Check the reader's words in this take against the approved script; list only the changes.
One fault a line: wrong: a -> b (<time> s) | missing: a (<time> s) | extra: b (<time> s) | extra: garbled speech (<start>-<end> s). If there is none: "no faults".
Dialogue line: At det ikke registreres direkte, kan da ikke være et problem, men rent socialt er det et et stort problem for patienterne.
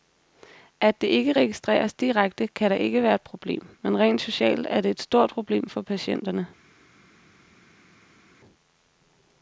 missing: et (5.0 s)